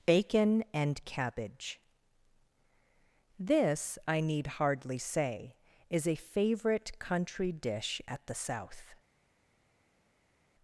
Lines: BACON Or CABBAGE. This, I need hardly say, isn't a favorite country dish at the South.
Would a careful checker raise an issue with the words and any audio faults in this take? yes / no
yes